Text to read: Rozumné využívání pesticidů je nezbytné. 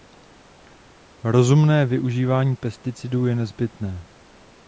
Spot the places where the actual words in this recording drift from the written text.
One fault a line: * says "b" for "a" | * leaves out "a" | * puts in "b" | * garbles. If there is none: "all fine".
all fine